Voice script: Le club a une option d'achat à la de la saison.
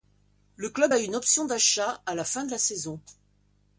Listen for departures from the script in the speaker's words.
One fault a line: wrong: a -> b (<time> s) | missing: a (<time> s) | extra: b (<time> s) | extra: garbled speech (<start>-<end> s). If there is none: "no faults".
extra: fin (2.2 s)